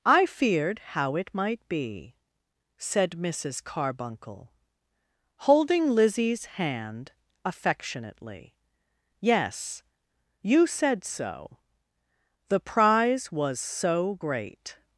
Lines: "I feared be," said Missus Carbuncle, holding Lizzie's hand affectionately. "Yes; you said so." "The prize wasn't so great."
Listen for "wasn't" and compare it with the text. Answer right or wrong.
wrong